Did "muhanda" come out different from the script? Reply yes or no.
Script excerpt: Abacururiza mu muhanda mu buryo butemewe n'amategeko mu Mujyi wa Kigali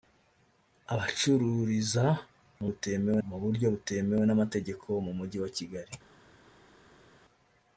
yes